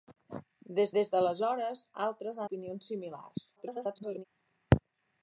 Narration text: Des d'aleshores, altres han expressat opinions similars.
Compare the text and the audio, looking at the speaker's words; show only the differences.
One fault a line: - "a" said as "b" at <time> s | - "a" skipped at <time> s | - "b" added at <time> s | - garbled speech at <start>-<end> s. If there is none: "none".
- "des" added at 1.0 s
- "han expressat" skipped at 2.4 s
- garbled speech at 3.6-4.2 s